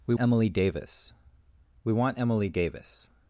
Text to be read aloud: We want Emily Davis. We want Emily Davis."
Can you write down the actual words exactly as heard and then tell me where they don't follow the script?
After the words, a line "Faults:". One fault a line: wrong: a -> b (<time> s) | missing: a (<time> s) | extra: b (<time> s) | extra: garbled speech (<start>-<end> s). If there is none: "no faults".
We Emily Davis. We want Emily Davis."
Faults:
missing: want (0.1 s)